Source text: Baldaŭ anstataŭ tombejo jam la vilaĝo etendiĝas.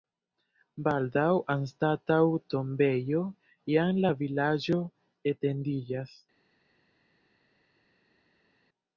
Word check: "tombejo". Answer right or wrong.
right